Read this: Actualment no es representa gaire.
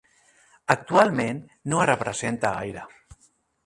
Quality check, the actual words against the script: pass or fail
pass